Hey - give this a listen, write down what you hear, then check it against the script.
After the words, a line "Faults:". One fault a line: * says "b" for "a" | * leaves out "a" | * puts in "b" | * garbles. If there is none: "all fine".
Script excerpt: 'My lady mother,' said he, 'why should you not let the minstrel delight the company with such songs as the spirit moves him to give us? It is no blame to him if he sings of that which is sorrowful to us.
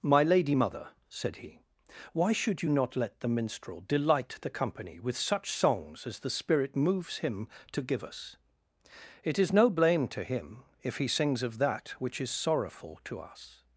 'My lady mother,' said he, 'why should you not let the minstrel delight the company with such songs as the spirit moves him to give us? It is no blame to him if he sings of that which is sorrowful to us.
Faults:
all fine